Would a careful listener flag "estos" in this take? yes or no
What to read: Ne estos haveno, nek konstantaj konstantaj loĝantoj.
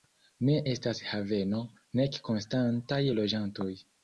yes